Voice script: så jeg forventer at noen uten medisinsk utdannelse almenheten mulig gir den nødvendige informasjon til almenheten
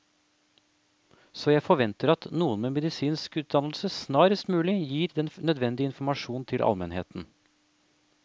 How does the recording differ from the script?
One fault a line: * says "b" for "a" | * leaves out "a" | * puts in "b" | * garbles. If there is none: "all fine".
* says "med" for "uten"
* says "snarest" for "almenheten"